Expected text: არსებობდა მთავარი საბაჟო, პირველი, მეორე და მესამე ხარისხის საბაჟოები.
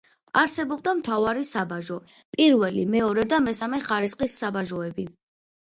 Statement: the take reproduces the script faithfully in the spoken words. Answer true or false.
true